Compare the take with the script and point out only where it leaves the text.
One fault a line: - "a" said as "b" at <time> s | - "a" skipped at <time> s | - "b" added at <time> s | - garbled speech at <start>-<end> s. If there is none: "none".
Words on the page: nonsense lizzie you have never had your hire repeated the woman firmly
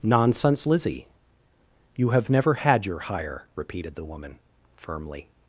none